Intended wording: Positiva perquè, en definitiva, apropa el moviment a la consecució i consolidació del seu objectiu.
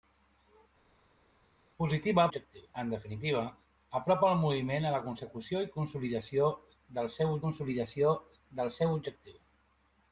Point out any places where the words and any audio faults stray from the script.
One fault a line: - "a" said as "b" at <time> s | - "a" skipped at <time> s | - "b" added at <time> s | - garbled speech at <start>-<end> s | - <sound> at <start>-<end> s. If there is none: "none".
- "perquè" said as "objectiu" at 2.3 s
- "consolidació del seu" added at 7.4 s